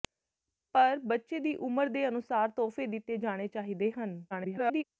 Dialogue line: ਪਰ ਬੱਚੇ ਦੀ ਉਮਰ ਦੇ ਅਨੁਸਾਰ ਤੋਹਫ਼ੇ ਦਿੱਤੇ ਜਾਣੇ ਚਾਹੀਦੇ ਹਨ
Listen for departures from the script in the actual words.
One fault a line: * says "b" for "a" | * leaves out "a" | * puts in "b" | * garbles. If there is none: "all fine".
* garbles